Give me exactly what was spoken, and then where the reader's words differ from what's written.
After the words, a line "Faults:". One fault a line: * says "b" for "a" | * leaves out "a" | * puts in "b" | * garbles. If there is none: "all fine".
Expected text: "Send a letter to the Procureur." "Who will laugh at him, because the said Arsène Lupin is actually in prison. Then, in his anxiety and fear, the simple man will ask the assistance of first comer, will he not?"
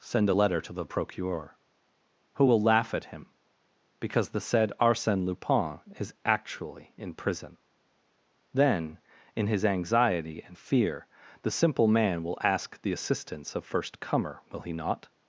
"Send a letter to the Procureur." "Who will laugh at him, because the said Arsène Lupin is actually in prison. Then, in his anxiety and fear, the simple man will ask the assistance of first comer, will he not?"
Faults:
all fine